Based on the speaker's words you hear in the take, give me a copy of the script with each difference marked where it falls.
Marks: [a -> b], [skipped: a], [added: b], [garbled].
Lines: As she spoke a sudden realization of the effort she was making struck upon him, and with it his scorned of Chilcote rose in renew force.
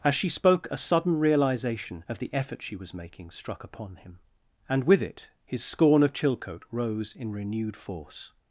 As she spoke a sudden realization of the effort she was making struck upon him, and with it his [scorned -> scorn] of Chilcote rose in [renew -> renewed] force.